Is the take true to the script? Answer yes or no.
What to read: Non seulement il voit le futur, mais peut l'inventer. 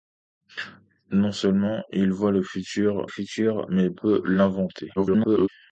no